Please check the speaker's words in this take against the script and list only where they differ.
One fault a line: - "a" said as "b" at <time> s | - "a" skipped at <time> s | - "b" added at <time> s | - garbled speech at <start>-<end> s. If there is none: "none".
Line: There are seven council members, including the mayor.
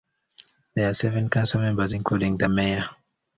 none